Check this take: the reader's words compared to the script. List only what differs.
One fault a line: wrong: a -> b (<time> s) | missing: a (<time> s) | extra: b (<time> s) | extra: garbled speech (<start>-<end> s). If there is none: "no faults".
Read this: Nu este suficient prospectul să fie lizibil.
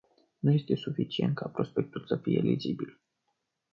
extra: ca (1.4 s)